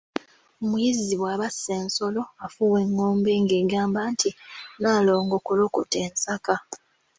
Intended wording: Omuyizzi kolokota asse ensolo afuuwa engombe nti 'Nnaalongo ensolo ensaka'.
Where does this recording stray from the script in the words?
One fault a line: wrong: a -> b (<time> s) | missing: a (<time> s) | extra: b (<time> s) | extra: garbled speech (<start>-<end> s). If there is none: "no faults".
wrong: kolokota -> bw'aba (1.2 s)
extra: ng'egamba (3.4 s)
wrong: ensolo -> kolokota (5.5 s)